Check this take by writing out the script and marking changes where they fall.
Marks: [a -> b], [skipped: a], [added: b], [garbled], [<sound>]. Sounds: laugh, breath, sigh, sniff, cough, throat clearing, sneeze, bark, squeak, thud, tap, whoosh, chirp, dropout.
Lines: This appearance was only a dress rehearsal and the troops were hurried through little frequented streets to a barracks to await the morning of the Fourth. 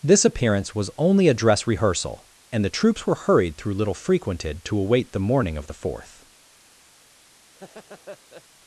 This appearance was only a dress rehearsal and the troops were hurried through little frequented [skipped: streets to a barracks] to await the morning of the Fourth. [laugh]